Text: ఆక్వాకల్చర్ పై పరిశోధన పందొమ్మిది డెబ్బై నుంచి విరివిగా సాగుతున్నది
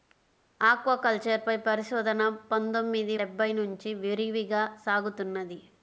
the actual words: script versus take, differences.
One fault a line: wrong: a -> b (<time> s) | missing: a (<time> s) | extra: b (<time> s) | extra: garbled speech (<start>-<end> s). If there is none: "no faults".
no faults